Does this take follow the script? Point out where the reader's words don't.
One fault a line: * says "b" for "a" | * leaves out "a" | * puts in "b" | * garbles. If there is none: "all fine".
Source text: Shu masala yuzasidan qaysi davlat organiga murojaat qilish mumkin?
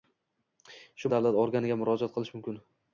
* leaves out "masala yuzasidan qaysi"